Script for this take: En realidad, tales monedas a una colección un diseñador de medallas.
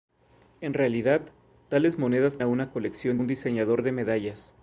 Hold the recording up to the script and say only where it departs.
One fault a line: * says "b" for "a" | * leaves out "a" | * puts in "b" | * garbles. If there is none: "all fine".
all fine